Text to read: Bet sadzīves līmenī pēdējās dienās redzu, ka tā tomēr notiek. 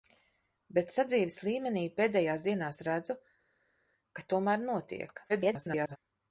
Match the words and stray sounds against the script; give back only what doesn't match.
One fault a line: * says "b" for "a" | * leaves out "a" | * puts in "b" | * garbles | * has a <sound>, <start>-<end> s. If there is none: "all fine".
* leaves out "tā"
* garbles